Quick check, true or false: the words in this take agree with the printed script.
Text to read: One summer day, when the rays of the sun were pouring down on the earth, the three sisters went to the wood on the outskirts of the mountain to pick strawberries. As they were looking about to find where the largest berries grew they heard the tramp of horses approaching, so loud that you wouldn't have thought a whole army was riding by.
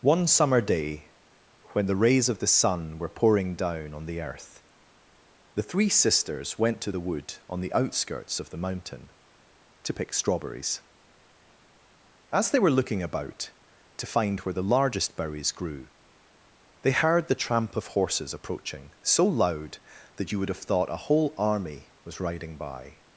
false